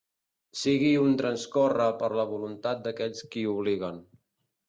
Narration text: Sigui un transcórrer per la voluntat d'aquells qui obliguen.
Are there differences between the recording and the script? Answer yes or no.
no